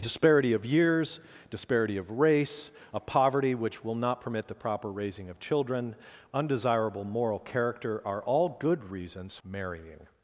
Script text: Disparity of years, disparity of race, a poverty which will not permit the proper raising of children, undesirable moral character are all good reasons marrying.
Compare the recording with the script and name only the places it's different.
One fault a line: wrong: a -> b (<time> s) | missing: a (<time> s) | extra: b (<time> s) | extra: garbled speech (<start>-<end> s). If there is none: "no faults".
no faults